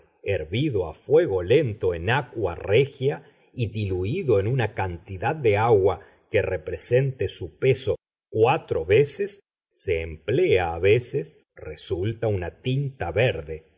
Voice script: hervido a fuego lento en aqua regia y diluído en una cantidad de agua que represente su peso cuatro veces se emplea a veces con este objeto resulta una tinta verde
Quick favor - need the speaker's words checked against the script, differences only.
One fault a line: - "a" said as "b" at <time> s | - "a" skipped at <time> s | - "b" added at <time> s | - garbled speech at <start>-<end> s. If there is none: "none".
- "con este objeto" skipped at 11.4 s